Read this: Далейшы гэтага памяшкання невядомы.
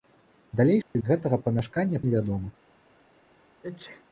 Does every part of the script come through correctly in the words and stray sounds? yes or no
no